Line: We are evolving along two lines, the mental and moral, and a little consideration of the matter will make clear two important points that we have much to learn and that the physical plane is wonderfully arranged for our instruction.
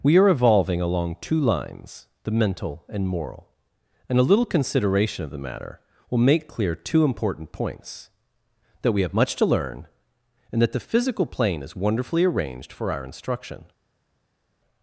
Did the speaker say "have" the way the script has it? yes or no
yes